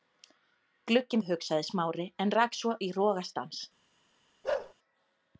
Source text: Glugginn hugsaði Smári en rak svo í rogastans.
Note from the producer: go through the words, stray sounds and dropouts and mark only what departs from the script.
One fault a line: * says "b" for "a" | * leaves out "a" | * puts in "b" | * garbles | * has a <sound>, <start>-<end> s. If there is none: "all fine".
* has a bark, 4.4-4.7 s